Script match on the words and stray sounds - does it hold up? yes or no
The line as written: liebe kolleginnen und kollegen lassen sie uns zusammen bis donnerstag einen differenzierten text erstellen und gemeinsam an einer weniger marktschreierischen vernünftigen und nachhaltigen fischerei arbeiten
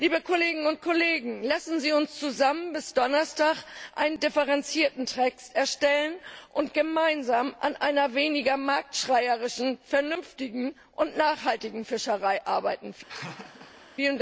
no